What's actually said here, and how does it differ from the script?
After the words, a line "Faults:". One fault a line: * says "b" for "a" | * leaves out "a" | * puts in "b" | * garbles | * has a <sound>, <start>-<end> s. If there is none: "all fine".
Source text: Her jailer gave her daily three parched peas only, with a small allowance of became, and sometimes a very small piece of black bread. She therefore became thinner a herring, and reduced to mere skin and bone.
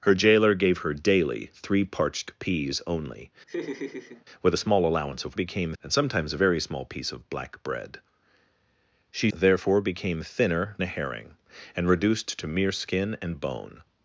Her jailer gave her daily three parched peas only, with a small allowance of became, and sometimes a very small piece of black bread. She therefore became thinner a herring, and reduced to mere skin and bone.
Faults:
* has a laugh, 3.5-4.2 s